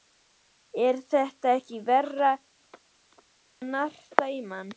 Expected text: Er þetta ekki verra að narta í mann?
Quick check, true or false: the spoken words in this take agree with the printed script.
true